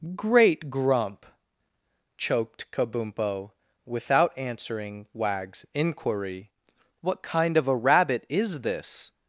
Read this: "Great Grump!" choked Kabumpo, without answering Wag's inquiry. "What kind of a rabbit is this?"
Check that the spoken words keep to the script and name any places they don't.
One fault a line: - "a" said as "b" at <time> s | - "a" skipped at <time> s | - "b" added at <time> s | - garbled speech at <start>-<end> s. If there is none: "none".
none